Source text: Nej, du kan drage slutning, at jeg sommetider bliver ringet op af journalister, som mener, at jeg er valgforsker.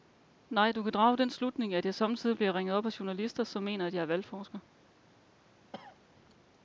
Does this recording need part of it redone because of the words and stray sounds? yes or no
yes